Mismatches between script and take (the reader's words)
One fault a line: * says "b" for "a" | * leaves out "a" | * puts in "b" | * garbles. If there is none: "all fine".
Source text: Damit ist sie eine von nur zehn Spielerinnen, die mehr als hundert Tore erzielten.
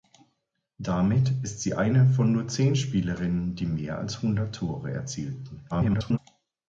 * garbles